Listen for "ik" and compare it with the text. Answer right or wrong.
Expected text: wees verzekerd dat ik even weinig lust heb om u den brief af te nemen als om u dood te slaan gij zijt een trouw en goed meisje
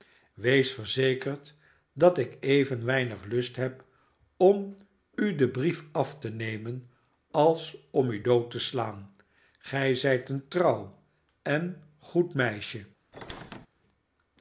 right